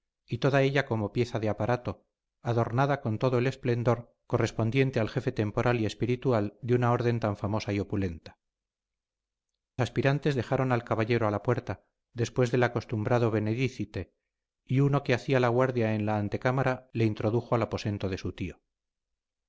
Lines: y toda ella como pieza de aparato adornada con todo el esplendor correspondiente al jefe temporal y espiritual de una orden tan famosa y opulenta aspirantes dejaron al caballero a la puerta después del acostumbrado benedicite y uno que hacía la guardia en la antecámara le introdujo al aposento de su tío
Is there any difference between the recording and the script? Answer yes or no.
no